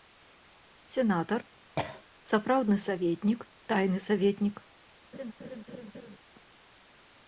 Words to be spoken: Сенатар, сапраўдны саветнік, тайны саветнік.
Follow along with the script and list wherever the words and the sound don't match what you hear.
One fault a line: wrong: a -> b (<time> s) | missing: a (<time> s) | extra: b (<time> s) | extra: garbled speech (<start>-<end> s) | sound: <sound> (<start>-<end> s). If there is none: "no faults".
sound: cough (1.8-2.0 s)
sound: laugh (5.1-6.2 s)